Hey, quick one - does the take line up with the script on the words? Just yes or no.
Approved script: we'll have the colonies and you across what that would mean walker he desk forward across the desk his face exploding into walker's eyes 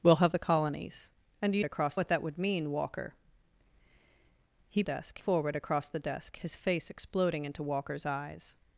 yes